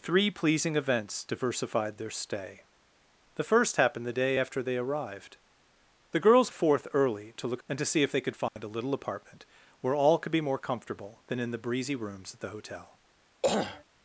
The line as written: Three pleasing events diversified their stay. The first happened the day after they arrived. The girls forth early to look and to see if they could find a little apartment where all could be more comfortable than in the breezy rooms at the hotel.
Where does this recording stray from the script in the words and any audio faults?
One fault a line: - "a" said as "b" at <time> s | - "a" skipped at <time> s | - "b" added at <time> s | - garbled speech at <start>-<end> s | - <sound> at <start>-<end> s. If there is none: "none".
- dropout at 8.5-8.6 s
- throat clearing at 13.4-13.8 s